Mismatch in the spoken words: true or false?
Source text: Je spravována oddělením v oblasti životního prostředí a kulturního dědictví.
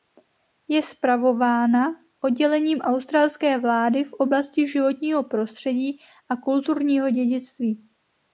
true